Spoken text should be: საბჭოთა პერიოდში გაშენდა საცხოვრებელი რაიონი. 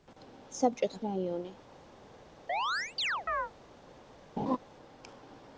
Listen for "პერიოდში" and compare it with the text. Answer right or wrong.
wrong